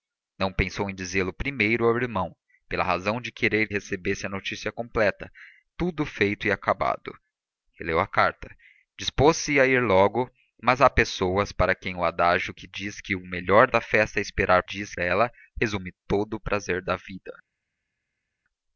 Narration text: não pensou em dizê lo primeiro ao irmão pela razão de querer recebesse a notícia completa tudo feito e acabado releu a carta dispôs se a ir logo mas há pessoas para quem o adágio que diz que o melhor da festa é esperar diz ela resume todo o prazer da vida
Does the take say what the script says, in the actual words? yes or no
yes